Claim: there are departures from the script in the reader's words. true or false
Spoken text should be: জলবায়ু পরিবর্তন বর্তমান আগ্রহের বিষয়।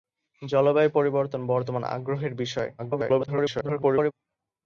true